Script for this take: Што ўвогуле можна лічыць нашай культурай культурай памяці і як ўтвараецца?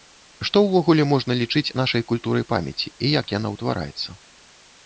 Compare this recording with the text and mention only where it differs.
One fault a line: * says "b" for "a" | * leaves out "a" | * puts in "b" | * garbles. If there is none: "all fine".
* leaves out "культурай"
* puts in "яна"